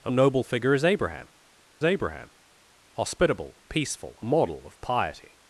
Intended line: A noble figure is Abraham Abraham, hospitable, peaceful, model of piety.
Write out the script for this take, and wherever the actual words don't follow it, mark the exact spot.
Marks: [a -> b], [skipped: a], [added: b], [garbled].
A noble figure is Abraham Abraham, hospitable, peaceful, model of piety.